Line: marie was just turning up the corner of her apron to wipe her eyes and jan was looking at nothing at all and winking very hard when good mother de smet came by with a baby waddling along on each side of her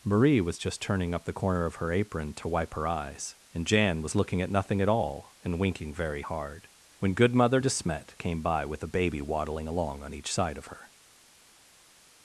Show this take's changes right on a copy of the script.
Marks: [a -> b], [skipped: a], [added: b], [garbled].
marie was just turning up the corner of her apron to wipe her eyes and jan was looking at nothing at all and winking very hard when good mother de smet came by with a baby waddling along on each side of her